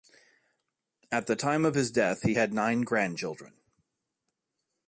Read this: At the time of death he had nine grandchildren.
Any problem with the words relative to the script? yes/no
yes